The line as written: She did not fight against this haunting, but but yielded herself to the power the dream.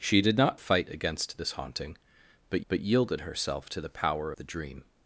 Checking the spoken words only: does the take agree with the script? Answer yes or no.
yes